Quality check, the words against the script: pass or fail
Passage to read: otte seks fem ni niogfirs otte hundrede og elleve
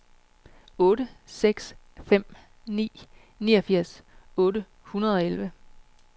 pass